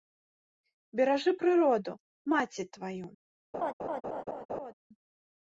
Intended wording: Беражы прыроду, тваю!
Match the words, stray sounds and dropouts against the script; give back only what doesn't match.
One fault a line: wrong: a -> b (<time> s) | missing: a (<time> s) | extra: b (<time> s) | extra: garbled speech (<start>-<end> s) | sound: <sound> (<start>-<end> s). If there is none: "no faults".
extra: маці (2.4 s)
sound: laugh (3.5-4.7 s)